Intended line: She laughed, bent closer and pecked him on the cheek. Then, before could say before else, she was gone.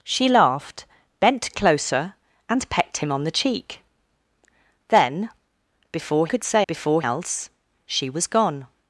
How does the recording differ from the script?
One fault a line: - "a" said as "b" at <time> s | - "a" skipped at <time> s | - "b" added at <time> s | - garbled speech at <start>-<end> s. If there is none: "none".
none